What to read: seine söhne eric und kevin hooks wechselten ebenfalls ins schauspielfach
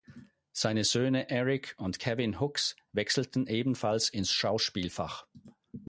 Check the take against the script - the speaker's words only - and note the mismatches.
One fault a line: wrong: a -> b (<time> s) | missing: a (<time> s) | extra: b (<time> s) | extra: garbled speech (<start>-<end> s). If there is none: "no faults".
no faults